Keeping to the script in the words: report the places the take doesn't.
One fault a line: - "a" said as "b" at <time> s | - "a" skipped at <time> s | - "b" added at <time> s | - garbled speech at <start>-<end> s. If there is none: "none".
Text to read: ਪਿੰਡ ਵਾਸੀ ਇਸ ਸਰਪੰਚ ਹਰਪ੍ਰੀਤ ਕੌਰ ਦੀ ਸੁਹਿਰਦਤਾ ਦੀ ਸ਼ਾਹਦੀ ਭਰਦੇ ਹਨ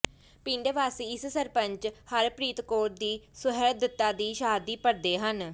none